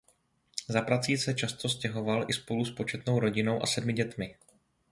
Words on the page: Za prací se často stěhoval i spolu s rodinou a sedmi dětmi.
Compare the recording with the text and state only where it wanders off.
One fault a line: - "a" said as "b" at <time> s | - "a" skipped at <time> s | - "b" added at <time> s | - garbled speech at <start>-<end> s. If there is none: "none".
- "početnou" added at 2.7 s